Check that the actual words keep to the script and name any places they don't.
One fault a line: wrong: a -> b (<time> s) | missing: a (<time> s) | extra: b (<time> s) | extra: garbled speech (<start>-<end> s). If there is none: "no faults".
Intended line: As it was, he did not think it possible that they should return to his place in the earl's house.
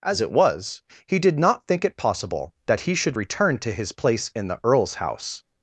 wrong: they -> he (2.8 s)